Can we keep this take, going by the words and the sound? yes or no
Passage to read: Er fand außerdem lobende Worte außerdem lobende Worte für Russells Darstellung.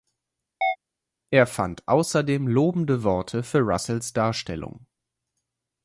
no